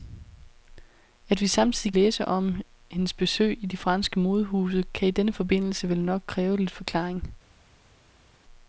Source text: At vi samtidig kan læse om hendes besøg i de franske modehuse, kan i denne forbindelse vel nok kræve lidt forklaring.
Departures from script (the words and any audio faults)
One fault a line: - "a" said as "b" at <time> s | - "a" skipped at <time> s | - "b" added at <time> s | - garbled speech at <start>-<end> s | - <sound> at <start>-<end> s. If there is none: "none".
- "kan" skipped at 1.9 s